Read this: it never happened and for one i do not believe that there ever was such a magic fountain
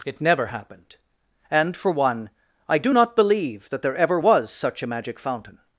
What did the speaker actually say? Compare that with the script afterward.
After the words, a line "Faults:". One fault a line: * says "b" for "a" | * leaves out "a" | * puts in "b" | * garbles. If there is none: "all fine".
it never happened and for one i do not believe that there ever was such a magic fountain
Faults:
all fine